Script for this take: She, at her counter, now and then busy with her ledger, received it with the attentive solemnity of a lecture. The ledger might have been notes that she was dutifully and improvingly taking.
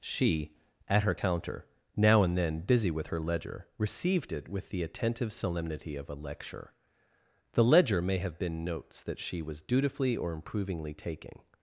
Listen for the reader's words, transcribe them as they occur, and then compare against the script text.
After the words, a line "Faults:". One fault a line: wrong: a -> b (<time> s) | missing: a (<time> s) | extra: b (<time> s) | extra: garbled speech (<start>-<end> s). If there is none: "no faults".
She, at her counter, now and then busy with her ledger, received it with the attentive solemnity of a lecture. The ledger may have been notes that she was dutifully or improvingly taking.
Faults:
wrong: might -> may (8.0 s)
wrong: and -> or (10.2 s)